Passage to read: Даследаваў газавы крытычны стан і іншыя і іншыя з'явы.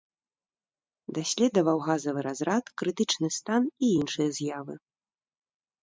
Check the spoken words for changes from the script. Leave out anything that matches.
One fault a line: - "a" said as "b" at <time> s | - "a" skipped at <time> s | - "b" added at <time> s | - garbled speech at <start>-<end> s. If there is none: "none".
- "разрад" added at 2.3 s
- "і іншыя" skipped at 4.3 s